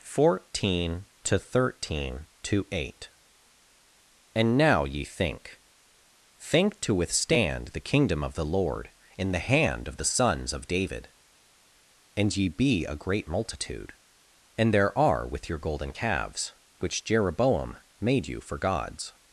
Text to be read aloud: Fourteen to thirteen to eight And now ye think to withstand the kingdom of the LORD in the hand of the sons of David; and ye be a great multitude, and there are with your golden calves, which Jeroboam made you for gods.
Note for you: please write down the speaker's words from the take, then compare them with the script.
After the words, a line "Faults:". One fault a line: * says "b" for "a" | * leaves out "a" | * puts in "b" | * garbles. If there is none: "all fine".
Fourteen to thirteen to eight And now ye think think to withstand the kingdom of the LORD in the hand of the sons of David; and ye be a great multitude, and there are with your golden calves, which Jeroboam made you for gods.
Faults:
* puts in "think"